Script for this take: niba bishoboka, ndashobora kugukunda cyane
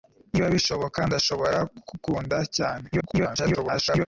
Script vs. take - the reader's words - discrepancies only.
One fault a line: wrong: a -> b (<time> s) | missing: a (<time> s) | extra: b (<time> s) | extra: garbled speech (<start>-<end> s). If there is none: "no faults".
extra: garbled speech (2.9-4.1 s)